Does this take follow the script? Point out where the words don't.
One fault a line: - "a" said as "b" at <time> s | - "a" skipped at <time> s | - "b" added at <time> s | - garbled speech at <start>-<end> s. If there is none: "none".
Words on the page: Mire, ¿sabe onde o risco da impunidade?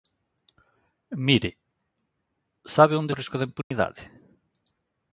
none